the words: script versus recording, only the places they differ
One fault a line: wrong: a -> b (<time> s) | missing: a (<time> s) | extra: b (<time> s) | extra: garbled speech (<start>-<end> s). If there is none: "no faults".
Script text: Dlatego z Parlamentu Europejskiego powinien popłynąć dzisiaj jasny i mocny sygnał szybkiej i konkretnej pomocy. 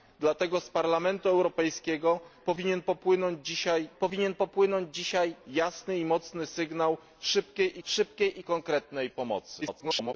extra: powinien popłynąć dzisiaj (4.0 s)
extra: szybkiej (7.8 s)
extra: garbled speech (9.6-10.1 s)